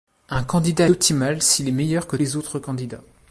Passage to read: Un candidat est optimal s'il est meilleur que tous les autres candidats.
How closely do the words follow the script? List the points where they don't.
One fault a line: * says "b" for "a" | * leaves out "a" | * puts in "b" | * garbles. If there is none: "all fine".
* leaves out "est"
* leaves out "tous"